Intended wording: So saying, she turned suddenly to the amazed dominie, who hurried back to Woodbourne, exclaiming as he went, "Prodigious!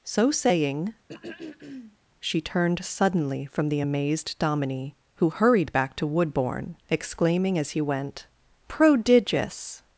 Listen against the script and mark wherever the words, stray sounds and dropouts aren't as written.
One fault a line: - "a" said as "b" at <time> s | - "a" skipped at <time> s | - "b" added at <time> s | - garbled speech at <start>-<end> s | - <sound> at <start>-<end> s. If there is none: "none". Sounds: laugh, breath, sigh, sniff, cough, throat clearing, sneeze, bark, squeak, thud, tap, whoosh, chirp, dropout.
- throat clearing at 1.1-2.0 s
- "to" said as "from" at 3.4 s